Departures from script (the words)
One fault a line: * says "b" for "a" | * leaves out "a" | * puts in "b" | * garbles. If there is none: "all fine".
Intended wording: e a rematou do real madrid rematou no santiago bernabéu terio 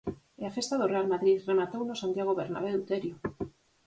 * says "festa" for "rematou"